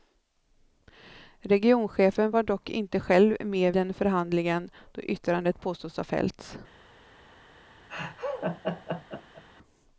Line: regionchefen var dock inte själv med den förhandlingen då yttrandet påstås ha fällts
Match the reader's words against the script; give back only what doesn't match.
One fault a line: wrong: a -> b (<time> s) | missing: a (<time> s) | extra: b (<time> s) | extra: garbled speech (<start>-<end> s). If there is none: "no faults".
no faults